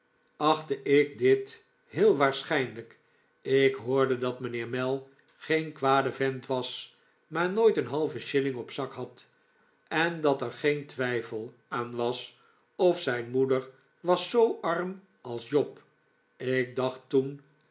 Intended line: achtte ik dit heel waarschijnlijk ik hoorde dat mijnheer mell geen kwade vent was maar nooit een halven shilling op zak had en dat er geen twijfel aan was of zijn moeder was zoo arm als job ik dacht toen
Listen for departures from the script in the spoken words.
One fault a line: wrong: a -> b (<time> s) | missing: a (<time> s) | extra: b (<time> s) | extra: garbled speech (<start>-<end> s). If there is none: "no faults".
no faults